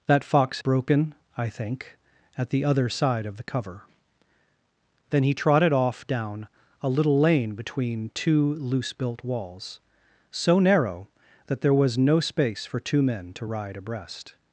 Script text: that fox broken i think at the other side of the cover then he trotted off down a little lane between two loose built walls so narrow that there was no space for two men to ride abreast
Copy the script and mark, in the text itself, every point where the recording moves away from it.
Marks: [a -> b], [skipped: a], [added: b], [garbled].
that fox broken i think at the other side of the cover then he trotted off down a little lane between two loose built walls so narrow that there was no space for two men to ride abreast